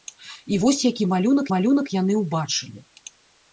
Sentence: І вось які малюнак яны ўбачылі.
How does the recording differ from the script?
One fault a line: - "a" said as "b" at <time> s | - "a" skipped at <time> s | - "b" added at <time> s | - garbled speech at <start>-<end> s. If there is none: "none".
- "малюнак" added at 1.5 s